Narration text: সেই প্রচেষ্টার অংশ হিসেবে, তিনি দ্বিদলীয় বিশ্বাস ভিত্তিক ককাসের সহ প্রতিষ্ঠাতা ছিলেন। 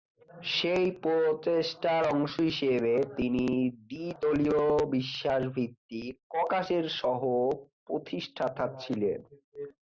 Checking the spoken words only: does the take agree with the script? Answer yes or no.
yes